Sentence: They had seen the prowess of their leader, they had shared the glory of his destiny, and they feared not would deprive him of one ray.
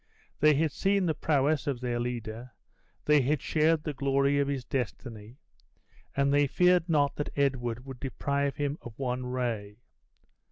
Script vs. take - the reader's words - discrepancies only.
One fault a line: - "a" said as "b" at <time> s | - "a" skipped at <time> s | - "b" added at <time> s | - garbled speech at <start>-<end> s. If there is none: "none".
- "that Edward" added at 7.2 s